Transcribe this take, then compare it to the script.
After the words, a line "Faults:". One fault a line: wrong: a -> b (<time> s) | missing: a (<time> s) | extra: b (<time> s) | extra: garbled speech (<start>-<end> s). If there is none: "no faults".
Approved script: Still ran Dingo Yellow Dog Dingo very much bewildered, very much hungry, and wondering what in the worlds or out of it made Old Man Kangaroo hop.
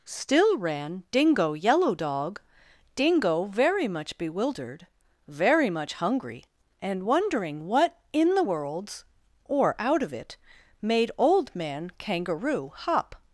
Still ran Dingo Yellow Dog Dingo very much bewildered, very much hungry, and wondering what in the worlds or out of it made Old Man Kangaroo hop.
Faults:
no faults